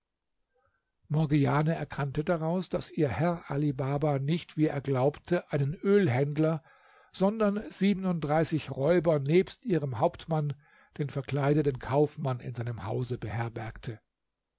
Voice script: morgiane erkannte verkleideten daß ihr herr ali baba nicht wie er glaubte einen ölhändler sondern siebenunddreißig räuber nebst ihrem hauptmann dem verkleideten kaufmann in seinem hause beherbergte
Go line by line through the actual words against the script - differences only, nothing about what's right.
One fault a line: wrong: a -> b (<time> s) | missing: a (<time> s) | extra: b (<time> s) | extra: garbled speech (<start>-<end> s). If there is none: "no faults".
wrong: verkleideten -> daraus (2.2 s)
wrong: dem -> den (11.0 s)